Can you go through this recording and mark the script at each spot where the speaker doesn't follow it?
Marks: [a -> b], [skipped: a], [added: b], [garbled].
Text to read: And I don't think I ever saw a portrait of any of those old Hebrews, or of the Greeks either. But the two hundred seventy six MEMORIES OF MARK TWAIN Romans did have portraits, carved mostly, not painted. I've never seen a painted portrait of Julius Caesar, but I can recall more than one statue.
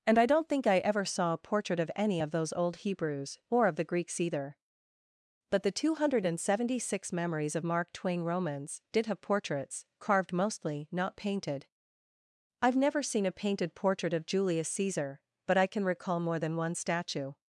And I don't think I ever saw a portrait of any of those old Hebrews, or of the Greeks either. But the two hundred seventy six MEMORIES OF MARK TWAIN Romans did have portraits, carved mostly, not painted. I've never seen a painted portrait of Julius Caesar, but I can recall more than one statue.